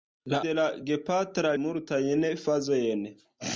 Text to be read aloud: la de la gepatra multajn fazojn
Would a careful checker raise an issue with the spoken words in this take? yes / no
no